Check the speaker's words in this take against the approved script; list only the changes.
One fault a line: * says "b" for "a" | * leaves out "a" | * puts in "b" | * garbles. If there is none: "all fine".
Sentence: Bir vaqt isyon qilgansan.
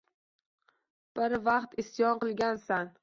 all fine